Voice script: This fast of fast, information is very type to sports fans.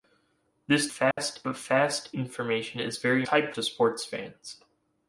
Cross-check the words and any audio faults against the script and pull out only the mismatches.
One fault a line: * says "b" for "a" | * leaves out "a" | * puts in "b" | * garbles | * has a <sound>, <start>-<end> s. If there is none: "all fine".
* has a dropout, 1.1-1.2 s